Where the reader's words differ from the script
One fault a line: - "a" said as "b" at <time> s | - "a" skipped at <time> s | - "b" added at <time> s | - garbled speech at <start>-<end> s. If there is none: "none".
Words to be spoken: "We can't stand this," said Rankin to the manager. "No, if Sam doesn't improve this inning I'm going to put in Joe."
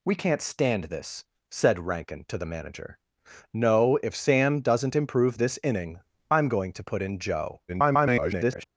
- garbled speech at 7.7-8.7 s